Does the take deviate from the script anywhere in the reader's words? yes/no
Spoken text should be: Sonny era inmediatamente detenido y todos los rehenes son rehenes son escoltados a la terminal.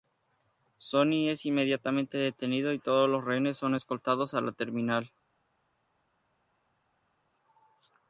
yes